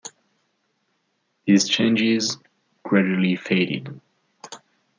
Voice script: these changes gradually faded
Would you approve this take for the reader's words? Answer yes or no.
yes